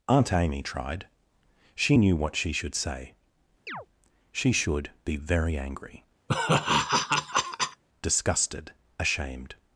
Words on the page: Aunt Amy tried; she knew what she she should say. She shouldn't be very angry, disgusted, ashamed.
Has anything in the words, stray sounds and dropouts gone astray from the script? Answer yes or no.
yes